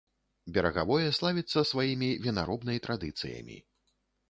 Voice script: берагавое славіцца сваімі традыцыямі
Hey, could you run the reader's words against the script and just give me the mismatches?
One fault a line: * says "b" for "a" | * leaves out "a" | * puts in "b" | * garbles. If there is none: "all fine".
* puts in "вінаробнай"